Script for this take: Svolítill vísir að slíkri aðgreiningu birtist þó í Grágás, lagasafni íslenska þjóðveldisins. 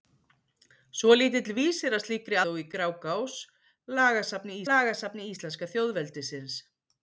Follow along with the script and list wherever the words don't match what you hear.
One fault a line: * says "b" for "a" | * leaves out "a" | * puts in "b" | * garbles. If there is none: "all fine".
* leaves out "aðgreiningu birtist"
* puts in "lagasafni"